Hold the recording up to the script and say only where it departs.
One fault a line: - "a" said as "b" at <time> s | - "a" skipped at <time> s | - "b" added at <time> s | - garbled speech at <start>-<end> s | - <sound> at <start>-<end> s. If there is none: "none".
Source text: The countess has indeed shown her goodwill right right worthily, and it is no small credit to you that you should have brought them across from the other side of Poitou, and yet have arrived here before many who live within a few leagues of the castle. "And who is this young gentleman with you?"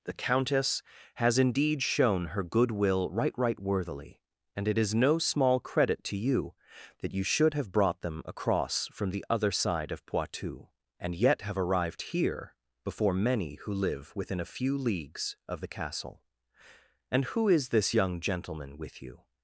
none